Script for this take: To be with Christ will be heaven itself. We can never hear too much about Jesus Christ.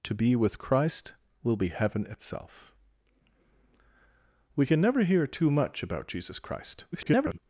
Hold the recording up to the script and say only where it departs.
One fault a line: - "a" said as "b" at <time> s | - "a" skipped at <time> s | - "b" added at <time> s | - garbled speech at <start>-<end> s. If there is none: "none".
- garbled speech at 6.9-7.4 s